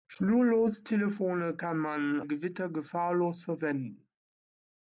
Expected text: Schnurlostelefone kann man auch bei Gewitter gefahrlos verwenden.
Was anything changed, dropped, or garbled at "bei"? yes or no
yes